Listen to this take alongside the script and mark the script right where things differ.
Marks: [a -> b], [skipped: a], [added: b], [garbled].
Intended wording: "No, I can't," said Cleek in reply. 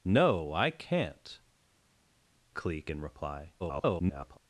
"No, I can't," [skipped: said] Cleek in reply. [garbled]